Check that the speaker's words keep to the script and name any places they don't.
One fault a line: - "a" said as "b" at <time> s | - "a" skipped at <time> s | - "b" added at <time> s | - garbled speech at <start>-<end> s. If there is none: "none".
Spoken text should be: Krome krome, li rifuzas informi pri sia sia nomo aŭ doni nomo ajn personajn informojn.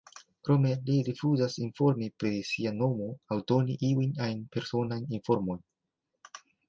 - "krome" skipped at 0.7 s
- "sia" skipped at 2.7 s
- "nomo" said as "iujn" at 3.9 s